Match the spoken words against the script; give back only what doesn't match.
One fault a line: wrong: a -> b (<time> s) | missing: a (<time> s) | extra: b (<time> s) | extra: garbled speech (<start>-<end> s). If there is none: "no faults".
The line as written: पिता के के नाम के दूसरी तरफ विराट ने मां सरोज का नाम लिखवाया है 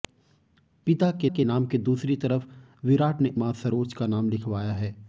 no faults